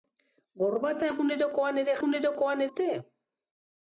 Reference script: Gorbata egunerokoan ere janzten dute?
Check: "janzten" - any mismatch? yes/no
yes